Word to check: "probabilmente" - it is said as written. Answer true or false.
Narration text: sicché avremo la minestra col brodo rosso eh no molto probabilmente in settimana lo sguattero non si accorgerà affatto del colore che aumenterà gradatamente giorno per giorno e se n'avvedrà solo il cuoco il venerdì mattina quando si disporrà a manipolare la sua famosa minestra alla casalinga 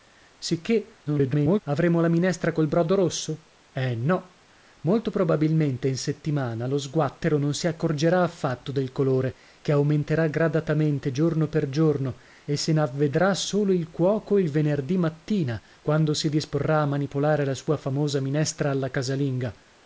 true